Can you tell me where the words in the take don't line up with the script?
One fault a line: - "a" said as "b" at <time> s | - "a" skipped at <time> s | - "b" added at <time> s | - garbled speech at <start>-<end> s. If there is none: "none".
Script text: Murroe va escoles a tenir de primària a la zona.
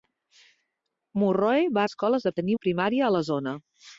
none